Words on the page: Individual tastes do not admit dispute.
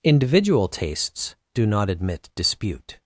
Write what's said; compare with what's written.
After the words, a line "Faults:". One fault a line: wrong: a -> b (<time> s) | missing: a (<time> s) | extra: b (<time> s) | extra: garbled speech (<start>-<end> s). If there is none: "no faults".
Individual tastes do not admit dispute.
Faults:
no faults